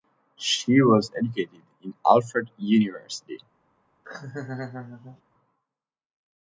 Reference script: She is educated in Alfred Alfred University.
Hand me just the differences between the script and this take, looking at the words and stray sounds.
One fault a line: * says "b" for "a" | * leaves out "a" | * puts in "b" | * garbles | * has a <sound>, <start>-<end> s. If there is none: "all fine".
* says "was" for "is"
* leaves out "Alfred"
* has a laugh, 4.0-5.2 s